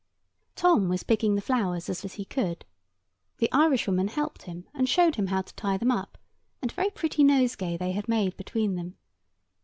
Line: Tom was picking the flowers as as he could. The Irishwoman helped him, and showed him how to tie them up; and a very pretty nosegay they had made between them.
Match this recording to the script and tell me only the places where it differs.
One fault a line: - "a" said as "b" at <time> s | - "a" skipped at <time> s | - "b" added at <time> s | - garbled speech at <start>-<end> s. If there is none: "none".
none